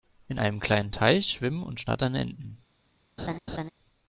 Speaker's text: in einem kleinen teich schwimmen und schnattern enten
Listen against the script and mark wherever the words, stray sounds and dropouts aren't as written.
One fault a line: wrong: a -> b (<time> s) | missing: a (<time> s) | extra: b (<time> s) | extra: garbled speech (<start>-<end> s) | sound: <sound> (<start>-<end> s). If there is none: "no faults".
sound: laugh (3.2-3.7 s)